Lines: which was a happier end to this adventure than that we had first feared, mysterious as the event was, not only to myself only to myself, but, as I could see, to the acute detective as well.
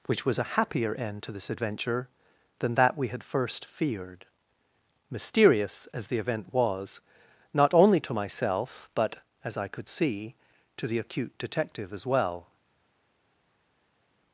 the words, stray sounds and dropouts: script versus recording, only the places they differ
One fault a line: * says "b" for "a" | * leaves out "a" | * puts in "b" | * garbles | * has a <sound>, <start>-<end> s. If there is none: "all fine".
* leaves out "only to myself"